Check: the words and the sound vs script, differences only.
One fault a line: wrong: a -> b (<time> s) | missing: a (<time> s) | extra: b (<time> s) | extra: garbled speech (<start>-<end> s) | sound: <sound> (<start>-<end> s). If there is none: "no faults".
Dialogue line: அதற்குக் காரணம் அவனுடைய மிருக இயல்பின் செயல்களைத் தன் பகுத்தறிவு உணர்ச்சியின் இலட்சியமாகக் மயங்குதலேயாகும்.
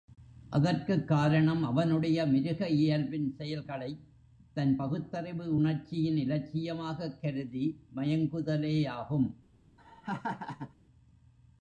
extra: கருதி (7.2 s)
sound: laugh (9.8-10.7 s)